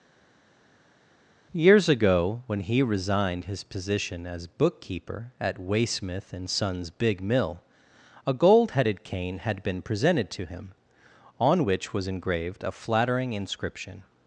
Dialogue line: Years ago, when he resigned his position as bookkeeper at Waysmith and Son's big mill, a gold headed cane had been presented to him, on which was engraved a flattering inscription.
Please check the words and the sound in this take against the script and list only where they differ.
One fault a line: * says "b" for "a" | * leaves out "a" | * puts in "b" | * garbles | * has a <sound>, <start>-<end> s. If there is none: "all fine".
all fine